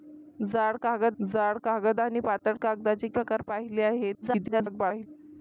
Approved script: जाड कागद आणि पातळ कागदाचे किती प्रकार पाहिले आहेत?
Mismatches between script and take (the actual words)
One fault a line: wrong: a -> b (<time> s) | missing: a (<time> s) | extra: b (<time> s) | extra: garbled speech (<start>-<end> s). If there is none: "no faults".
extra: जाड कागद (1.2 s)
missing: किती (3.1 s)
extra: garbled speech (4.2-5.1 s)